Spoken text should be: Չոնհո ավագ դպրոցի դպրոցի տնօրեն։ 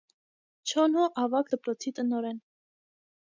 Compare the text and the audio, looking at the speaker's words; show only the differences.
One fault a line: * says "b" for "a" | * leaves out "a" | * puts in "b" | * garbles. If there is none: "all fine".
* leaves out "դպրոցի"